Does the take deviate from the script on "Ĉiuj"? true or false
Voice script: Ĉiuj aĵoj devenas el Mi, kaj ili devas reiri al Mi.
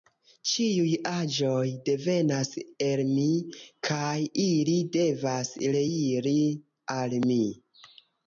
false